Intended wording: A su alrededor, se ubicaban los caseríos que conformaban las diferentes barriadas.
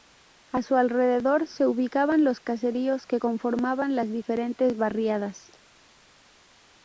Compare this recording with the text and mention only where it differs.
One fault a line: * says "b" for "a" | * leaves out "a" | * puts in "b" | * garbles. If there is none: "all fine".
all fine